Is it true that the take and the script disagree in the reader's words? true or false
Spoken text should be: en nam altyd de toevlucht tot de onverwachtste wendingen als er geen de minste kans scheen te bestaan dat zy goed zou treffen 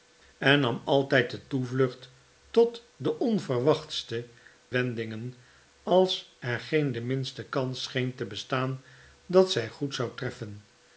false